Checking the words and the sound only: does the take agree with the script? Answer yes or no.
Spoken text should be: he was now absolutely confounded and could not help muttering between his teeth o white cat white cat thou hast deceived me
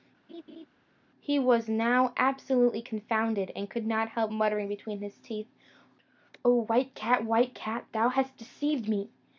no